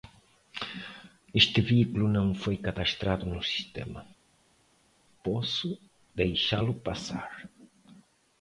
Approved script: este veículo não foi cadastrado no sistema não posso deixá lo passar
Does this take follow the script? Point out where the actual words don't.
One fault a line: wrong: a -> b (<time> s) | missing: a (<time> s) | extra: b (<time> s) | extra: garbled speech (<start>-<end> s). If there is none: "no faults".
missing: não (4.0 s)